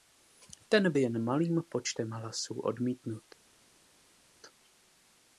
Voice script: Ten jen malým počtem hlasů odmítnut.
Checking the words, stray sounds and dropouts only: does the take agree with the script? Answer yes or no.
yes